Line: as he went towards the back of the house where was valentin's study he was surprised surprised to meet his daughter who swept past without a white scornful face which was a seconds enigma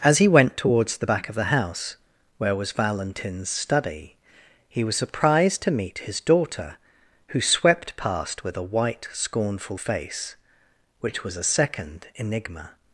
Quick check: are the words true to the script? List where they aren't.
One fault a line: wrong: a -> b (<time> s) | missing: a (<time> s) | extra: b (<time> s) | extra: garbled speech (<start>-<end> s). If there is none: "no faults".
missing: surprised (5.6 s)
wrong: without -> with (8.4 s)
wrong: seconds -> second (11.4 s)